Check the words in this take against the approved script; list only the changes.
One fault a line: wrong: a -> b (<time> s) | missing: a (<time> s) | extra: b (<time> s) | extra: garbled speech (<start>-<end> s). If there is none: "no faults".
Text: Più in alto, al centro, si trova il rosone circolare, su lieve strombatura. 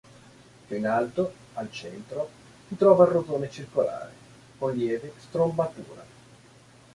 wrong: su -> con (4.6 s)